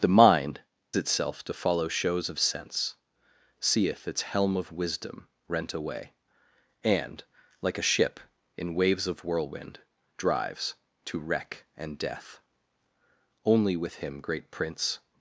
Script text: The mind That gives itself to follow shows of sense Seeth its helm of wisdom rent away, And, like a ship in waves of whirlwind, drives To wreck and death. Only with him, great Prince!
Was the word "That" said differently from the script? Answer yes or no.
yes